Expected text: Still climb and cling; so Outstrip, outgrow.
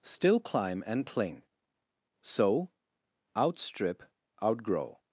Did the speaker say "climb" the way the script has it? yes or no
yes